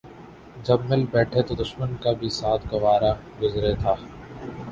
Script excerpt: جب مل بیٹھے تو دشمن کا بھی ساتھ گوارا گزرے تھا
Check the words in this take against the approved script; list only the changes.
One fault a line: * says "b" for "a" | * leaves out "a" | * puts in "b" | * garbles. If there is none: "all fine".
all fine